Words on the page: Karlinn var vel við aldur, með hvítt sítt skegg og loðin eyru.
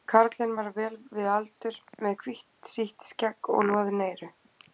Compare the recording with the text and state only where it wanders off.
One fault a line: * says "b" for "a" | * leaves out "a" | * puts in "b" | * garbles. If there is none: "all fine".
all fine